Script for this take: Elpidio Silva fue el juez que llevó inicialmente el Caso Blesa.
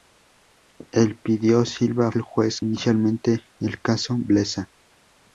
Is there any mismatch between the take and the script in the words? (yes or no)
yes